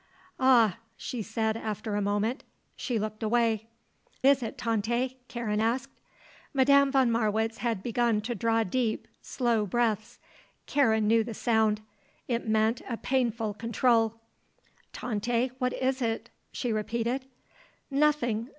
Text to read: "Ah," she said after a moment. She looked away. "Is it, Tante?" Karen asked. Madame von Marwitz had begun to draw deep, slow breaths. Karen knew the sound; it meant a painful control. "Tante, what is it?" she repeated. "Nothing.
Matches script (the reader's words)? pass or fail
pass